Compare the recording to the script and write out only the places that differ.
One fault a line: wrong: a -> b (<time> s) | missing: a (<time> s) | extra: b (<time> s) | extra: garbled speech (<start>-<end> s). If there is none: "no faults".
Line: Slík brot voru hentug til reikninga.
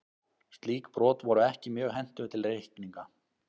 extra: ekki mjög (1.5 s)